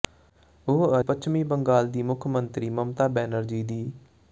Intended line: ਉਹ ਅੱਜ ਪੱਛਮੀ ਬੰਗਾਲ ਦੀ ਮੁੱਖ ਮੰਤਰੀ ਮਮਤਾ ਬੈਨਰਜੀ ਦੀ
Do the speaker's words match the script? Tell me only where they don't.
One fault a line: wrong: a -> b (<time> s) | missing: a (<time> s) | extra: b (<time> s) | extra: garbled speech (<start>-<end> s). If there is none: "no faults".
missing: ਅੱਜ (1.0 s)